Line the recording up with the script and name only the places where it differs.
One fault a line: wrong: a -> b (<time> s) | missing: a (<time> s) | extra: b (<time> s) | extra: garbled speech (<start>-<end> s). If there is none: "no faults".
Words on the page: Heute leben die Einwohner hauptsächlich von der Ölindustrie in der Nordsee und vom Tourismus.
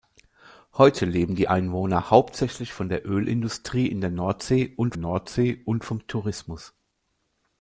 extra: Nordsee und (4.9 s)